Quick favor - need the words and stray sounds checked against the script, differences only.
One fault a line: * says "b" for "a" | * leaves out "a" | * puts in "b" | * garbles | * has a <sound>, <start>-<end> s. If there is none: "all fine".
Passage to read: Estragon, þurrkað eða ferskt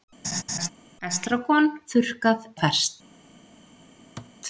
* has a laugh, 0.2-0.7 s
* leaves out "eða"
* has a thud, 4.2-4.3 s